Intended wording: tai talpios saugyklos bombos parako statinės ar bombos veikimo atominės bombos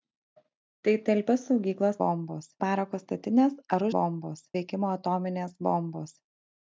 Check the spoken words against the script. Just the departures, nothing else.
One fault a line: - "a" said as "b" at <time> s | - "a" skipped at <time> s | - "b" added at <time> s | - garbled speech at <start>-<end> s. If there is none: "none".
none